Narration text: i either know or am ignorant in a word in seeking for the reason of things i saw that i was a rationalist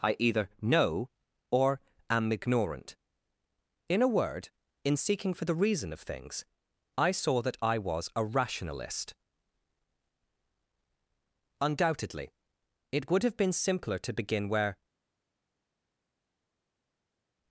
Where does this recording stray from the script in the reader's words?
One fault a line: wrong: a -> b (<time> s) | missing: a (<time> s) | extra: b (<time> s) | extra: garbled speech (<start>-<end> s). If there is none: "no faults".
extra: undoubtedly it would have been simpler to begin where (11.6 s)